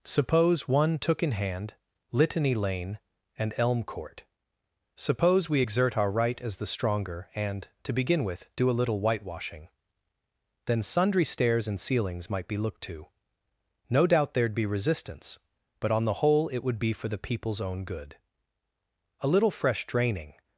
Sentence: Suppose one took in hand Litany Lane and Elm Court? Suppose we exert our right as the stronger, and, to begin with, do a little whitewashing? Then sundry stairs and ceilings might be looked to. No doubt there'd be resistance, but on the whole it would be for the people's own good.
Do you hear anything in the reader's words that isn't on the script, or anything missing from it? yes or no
yes